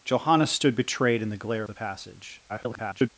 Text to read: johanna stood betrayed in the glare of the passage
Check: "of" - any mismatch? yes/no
yes